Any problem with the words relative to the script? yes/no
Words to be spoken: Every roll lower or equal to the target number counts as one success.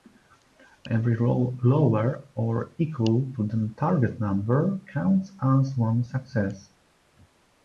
no